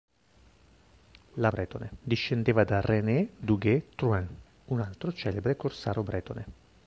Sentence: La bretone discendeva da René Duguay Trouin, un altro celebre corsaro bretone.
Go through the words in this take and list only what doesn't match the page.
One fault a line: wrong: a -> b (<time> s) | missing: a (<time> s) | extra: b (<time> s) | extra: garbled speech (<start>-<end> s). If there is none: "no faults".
no faults